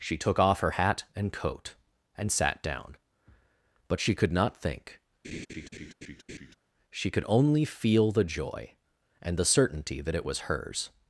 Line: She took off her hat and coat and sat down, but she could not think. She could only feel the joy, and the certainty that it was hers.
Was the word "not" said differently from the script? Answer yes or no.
no